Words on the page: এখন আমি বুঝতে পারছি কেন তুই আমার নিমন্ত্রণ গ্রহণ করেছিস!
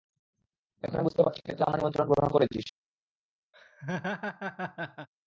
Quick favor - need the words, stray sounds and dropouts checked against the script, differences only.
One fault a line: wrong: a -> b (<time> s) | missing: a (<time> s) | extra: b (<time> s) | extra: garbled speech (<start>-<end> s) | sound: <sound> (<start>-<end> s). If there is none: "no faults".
sound: laugh (3.5-5.1 s)